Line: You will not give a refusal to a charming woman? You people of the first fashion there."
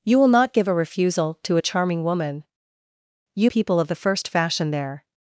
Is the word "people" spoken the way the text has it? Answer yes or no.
yes